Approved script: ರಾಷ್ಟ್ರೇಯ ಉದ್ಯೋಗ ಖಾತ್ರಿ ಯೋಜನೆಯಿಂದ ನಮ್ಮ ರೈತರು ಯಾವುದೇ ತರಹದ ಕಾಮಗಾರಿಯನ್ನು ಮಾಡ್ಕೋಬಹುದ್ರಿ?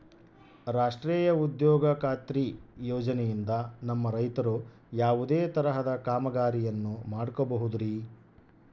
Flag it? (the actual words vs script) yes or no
no